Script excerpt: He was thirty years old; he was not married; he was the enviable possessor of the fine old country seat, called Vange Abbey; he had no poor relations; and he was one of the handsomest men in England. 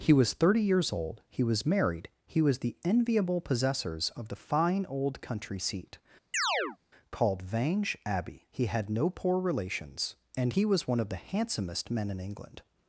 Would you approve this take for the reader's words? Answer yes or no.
no